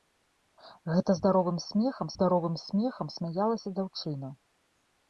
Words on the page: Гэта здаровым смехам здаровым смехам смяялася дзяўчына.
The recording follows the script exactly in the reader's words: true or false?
true